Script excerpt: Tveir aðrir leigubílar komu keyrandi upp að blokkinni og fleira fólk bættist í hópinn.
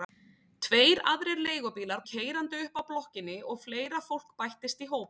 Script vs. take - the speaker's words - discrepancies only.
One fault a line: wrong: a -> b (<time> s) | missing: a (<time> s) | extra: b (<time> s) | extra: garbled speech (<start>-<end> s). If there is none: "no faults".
missing: komu (2.0 s)